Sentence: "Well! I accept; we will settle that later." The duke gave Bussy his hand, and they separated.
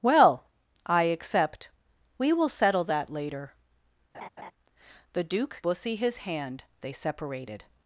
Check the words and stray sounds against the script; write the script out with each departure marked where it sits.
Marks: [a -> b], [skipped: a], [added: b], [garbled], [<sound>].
"Well! I accept; we will settle that later." [laugh] The duke [skipped: gave] Bussy his hand, [skipped: and] they separated.